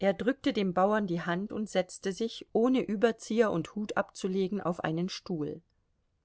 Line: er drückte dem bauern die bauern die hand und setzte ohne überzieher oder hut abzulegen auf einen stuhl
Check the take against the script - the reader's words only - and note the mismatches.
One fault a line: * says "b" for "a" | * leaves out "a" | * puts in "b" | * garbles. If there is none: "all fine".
* leaves out "bauern die"
* puts in "sich"
* says "und" for "oder"